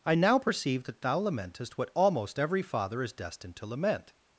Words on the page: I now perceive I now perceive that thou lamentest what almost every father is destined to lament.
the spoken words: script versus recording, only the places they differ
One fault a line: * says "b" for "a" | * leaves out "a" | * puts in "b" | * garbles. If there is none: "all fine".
* leaves out "I now perceive"